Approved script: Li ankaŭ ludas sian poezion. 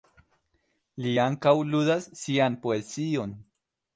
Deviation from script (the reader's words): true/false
false